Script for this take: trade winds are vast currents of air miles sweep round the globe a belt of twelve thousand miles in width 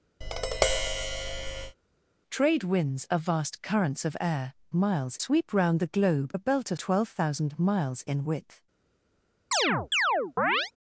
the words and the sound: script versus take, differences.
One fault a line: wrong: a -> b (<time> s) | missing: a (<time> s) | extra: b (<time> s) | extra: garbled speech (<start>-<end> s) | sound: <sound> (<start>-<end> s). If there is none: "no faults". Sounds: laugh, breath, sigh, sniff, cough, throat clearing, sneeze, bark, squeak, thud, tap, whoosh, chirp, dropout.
sound: tap (0.2-1.8 s)
sound: chirp (9.5-10.7 s)